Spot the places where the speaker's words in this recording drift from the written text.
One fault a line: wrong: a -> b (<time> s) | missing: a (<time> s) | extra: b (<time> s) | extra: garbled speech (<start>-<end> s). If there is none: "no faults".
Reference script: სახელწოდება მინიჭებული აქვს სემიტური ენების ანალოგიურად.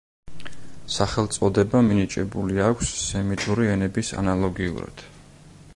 no faults